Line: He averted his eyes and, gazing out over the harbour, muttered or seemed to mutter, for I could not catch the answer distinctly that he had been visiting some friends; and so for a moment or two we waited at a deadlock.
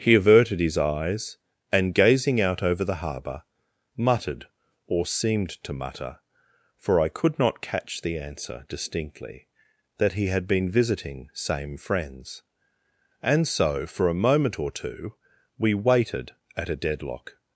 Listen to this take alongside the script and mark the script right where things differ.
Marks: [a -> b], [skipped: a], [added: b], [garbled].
He averted his eyes and, gazing out over the harbour, muttered or seemed to mutter, for I could not catch the answer distinctly that he had been visiting [some -> same] friends; and so for a moment or two we waited at a deadlock.